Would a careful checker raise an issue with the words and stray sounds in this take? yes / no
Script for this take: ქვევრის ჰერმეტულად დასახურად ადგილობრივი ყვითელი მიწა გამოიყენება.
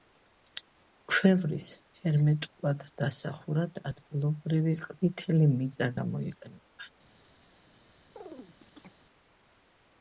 yes